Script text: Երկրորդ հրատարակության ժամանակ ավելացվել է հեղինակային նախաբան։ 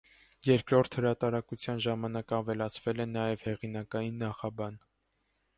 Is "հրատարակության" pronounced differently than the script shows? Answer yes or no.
no